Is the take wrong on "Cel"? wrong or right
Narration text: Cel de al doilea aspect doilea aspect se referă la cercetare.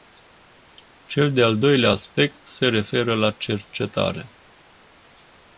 right